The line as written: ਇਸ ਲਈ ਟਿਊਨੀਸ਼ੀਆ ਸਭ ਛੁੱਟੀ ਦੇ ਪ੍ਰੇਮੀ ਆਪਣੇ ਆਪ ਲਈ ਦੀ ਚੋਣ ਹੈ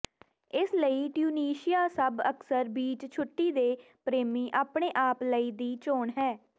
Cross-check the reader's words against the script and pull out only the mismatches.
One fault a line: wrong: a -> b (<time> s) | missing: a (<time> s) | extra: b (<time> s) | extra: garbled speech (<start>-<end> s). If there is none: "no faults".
extra: ਅਕਸਰ ਬੀਚ (2.3 s)